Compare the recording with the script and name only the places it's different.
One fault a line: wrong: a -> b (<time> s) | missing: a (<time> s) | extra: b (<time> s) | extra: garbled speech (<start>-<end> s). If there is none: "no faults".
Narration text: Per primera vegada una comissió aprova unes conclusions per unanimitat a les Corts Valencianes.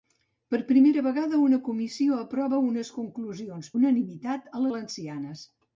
missing: per (3.7 s)
missing: les Corts (4.7 s)